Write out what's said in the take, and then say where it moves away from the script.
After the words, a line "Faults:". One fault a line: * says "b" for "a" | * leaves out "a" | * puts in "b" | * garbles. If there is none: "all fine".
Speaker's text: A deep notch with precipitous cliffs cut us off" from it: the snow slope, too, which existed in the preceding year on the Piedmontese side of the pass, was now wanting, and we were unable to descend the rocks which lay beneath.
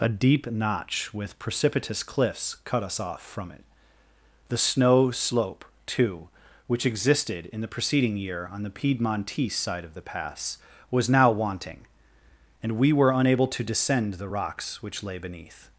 A deep notch with precipitous cliffs cut us off" from it: the snow slope, too, which existed in the preceding year on the Piedmontese side of the pass, was now wanting, and we were unable to descend the rocks which lay beneath.
Faults:
all fine